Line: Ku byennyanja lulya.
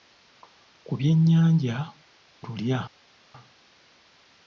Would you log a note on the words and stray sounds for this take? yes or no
no